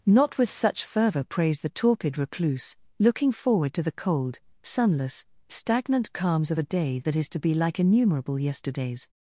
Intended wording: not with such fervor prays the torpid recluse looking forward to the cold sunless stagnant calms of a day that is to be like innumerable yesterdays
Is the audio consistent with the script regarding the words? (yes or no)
yes